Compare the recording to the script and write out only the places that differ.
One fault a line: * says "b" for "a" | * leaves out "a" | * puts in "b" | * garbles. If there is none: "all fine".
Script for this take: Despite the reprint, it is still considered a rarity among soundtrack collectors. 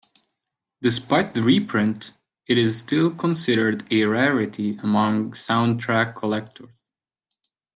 all fine